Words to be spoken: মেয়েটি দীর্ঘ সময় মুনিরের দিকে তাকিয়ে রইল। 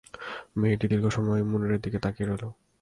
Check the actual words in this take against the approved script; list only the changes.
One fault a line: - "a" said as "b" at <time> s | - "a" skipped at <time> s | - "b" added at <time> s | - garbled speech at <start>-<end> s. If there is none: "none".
none